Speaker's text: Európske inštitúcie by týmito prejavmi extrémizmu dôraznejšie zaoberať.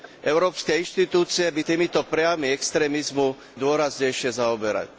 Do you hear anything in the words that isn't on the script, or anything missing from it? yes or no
no